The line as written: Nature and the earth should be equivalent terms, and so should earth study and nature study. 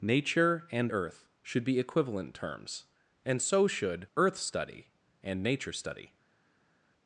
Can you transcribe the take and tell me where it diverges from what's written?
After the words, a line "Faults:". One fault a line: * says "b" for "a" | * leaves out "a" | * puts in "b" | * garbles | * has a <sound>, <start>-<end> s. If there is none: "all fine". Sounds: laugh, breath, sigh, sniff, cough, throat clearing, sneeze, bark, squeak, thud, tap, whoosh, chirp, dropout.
Nature and earth should be equivalent terms, and so should earth study and nature study.
Faults:
* leaves out "the"